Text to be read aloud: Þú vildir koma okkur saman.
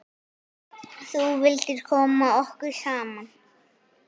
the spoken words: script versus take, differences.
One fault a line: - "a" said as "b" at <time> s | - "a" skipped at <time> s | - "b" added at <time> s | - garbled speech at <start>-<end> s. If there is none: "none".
none